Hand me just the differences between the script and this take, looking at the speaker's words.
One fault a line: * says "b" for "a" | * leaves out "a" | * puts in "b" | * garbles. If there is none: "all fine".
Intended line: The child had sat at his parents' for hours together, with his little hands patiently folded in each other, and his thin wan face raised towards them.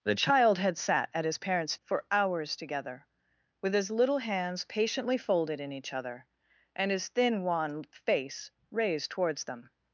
all fine